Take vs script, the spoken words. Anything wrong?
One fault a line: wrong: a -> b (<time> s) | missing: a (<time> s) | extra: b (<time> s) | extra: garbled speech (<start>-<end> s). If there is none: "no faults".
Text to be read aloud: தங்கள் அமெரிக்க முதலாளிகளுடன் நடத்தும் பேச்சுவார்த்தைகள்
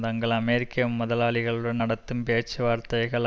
no faults